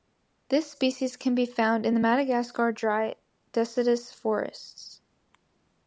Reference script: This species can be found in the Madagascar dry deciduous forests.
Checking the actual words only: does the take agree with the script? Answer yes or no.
yes